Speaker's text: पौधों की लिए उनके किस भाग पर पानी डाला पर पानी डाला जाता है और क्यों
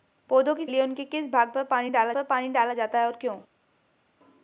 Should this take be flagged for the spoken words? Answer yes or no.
no